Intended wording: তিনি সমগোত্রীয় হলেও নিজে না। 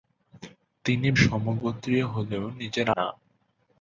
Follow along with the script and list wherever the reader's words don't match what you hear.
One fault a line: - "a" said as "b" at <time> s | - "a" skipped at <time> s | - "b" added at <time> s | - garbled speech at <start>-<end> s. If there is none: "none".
none